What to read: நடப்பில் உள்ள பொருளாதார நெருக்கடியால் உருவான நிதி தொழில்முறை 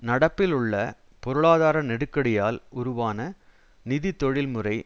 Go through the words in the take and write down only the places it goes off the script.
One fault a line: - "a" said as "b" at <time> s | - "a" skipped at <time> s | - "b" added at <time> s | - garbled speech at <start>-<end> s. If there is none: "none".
none